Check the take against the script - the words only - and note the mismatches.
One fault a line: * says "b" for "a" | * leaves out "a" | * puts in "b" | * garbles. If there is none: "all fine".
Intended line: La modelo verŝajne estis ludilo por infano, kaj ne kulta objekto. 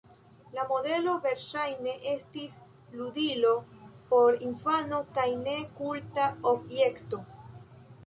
all fine